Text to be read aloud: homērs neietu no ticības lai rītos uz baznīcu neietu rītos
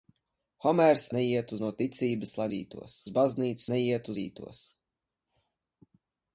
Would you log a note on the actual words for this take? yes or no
no